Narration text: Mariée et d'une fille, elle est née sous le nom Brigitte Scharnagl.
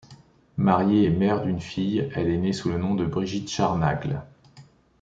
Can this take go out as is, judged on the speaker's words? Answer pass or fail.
fail